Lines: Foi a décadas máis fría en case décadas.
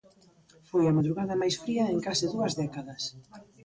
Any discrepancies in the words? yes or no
yes